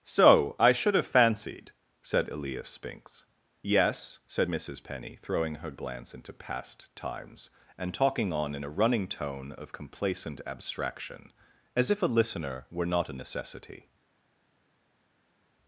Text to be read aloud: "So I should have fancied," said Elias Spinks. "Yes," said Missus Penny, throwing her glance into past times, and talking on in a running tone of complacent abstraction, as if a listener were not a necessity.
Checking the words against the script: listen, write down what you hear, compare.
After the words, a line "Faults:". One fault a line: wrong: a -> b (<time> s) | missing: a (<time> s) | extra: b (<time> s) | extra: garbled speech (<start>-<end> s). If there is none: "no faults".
"So I should have fancied," said Elias Spinks. "Yes," said Missus Penny, throwing her glance into past times, and talking on in a running tone of complacent abstraction, as if a listener were not a necessity.
Faults:
no faults